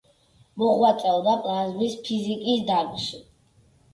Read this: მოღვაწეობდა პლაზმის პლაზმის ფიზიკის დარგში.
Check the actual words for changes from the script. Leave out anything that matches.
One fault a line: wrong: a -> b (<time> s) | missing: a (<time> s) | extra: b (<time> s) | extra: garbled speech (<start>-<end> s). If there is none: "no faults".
missing: პლაზმის (2.0 s)